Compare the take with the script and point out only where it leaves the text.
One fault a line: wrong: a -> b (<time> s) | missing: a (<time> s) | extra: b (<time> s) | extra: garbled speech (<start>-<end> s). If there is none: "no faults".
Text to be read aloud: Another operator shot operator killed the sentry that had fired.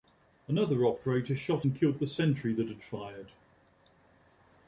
wrong: operator -> and (1.6 s)